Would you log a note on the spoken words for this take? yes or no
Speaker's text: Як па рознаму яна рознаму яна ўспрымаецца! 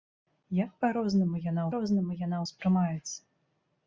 no